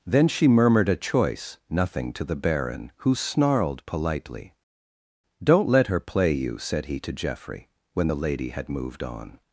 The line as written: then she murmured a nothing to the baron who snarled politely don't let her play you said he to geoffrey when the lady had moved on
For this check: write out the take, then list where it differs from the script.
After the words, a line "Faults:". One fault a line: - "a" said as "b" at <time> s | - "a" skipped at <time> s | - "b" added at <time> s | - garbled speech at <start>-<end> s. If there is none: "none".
then she murmured a choice nothing to the baron who snarled politely don't let her play you said he to geoffrey when the lady had moved on
Faults:
- "choice" added at 0.9 s